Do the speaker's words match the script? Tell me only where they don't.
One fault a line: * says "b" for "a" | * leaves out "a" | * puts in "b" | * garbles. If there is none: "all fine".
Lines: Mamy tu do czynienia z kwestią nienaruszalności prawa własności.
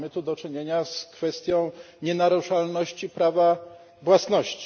all fine